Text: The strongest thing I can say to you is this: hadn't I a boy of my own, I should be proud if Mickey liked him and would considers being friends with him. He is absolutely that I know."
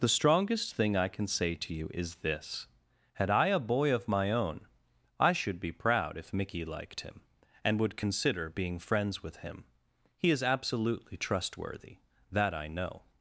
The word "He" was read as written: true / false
true